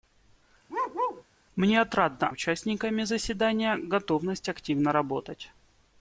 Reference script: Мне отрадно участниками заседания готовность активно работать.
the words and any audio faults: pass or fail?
fail